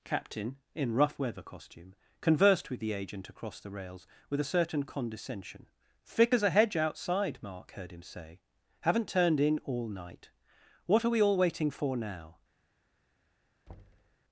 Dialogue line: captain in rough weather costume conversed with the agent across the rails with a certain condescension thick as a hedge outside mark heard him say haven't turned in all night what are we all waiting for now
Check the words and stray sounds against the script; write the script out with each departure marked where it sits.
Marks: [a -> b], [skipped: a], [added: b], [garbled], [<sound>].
captain in rough weather costume conversed with the agent across the rails with a certain condescension thick as a hedge outside mark heard him say haven't turned in all night what are we all waiting for now [thud]